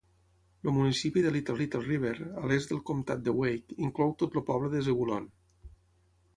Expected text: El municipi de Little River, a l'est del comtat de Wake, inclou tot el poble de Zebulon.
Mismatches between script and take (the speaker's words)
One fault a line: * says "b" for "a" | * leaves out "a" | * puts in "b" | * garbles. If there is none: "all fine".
* puts in "Little"